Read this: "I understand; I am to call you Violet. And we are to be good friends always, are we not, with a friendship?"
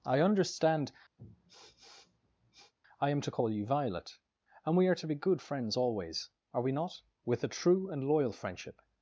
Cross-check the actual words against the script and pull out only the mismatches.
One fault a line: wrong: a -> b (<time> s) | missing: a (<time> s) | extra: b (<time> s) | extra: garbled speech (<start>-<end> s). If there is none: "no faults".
extra: true and loyal (7.5 s)